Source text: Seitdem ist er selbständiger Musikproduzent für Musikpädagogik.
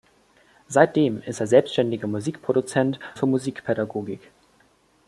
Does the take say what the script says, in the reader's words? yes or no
yes